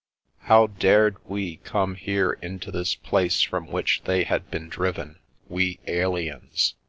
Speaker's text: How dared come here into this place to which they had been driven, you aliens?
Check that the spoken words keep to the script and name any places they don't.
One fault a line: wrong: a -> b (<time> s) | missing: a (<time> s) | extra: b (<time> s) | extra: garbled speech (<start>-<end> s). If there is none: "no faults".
extra: we (1.3 s)
wrong: to -> from (3.4 s)
wrong: you -> we (5.5 s)